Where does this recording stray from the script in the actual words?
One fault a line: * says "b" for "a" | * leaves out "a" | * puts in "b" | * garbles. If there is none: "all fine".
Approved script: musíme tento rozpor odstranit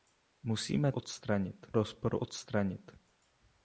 * says "odstranit" for "tento"